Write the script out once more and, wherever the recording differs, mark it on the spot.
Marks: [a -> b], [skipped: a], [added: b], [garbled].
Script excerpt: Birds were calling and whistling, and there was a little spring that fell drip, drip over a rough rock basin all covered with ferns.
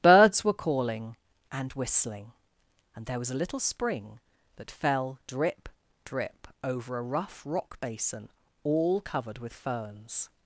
Birds were calling and whistling, and there was a little spring that fell drip, drip over a rough rock basin all covered with ferns.